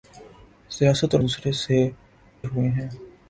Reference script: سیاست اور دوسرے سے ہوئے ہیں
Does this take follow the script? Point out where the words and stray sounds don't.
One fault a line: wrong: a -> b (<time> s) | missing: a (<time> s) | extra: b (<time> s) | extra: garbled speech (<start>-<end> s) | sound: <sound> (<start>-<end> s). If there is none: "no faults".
no faults